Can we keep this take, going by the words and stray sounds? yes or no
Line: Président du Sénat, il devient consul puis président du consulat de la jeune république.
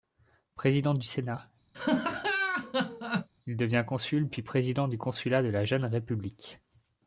no